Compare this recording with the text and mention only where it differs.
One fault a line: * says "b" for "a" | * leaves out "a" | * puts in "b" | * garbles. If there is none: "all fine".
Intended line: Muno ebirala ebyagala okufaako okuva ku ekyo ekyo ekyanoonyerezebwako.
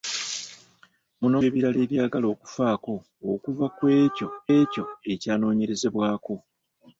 all fine